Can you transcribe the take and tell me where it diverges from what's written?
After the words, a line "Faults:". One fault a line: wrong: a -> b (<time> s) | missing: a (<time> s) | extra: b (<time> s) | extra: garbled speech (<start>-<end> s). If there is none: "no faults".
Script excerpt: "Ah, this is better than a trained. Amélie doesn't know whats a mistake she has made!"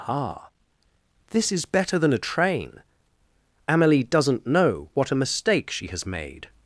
"Ah, this is better than a train. Amélie doesn't know what a mistake she has made!"
Faults:
wrong: trained -> train (2.2 s)
wrong: whats -> what (4.9 s)